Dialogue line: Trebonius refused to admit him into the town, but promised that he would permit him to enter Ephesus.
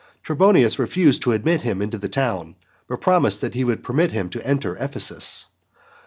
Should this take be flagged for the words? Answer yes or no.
no